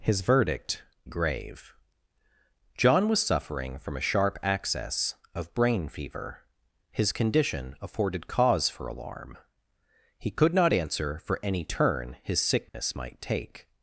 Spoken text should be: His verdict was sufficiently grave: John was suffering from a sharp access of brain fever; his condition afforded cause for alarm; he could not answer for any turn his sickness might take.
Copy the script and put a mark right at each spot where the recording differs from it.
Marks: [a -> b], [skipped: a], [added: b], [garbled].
His verdict [skipped: was sufficiently] grave: John was suffering from a sharp access of brain fever; his condition afforded cause for alarm; he could not answer for any turn his sickness might take.